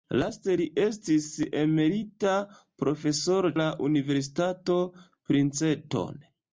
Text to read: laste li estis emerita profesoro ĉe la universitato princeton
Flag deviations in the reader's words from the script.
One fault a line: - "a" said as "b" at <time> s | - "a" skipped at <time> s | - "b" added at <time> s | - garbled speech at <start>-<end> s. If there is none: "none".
- "ĉe" skipped at 3.5 s